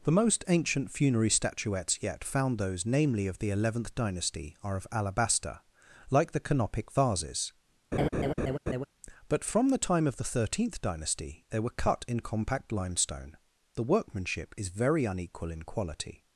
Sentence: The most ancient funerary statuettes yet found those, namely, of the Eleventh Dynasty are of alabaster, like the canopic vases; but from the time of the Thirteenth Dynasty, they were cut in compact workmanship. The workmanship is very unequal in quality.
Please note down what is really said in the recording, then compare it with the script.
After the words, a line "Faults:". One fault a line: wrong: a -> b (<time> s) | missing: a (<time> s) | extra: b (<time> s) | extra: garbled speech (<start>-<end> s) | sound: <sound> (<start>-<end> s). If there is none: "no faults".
The most ancient funerary statuettes yet found those, namely, of the Eleventh Dynasty are of alabaster, like the canopic vases; but from the time of the Thirteenth Dynasty, they were cut in compact limestone. The workmanship is very unequal in quality.
Faults:
sound: laugh (7.9-8.9 s)
wrong: workmanship -> limestone (12.7 s)